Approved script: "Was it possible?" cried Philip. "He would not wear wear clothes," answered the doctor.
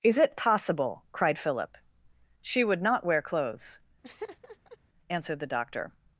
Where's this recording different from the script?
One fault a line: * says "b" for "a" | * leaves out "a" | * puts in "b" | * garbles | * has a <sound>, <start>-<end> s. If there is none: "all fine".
* says "Is" for "Was"
* says "She" for "He"
* leaves out "wear"
* has a laugh, 4.0-4.8 s